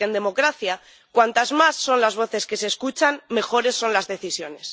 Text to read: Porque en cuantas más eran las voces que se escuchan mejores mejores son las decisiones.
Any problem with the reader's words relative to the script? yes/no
yes